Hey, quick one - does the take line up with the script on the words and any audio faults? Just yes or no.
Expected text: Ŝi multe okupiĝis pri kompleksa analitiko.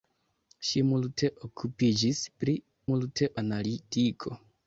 no